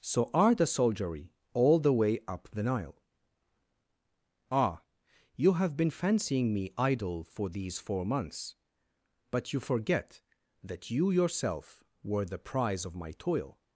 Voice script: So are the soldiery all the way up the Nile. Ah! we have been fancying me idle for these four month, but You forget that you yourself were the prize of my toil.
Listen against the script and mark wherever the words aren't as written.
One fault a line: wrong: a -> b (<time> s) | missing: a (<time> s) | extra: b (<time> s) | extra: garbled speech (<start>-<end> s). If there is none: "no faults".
wrong: we -> you (5.3 s)
wrong: month -> months (8.0 s)